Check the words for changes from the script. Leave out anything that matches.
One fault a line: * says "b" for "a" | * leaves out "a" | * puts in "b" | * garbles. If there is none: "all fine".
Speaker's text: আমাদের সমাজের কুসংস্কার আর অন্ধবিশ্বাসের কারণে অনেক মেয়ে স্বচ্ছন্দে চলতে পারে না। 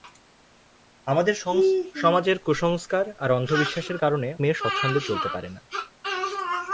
* leaves out "অনেক"